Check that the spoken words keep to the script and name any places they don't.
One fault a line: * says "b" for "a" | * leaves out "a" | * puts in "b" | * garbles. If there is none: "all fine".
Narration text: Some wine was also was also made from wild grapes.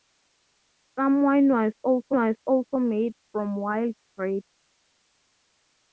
all fine